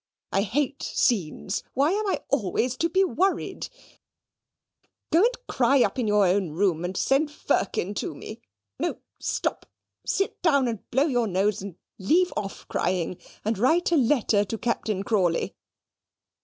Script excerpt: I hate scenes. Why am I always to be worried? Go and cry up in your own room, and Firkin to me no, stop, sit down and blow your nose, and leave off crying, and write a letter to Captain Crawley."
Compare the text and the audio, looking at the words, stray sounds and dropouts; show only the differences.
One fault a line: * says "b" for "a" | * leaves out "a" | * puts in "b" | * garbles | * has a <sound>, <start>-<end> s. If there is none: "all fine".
* puts in "send"